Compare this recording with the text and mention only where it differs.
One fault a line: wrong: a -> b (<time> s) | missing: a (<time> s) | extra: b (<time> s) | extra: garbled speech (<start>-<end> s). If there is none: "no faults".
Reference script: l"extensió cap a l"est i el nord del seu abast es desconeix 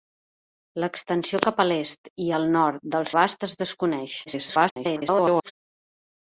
missing: seu (3.1 s)
extra: garbled speech (4.3-5.5 s)